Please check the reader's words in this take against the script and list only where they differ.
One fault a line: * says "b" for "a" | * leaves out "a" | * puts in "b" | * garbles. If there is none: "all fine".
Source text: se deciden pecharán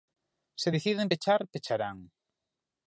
* puts in "pechar"